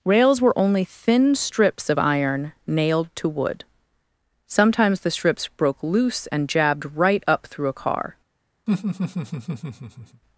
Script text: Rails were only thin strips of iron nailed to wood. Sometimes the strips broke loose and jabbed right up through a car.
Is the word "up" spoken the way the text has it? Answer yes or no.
yes